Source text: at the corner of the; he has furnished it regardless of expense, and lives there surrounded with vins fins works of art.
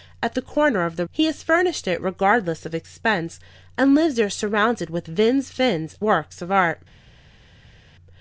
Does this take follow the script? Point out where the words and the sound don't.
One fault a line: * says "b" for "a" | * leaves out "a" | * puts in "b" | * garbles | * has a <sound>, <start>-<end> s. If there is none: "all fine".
all fine